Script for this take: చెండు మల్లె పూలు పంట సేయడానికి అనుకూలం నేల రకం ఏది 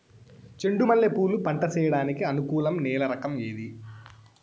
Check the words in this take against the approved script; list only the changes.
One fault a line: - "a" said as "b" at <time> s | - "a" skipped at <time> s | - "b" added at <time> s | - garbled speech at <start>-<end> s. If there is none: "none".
none